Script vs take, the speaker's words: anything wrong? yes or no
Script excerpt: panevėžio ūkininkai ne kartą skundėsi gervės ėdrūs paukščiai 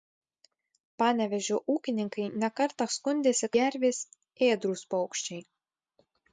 no